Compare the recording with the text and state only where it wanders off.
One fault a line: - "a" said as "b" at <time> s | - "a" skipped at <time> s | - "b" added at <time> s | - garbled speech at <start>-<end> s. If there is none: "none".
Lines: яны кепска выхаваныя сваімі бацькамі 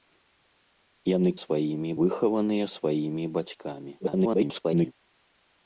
- "кепска" said as "сваімі" at 1.4 s
- garbled speech at 4.0-4.9 s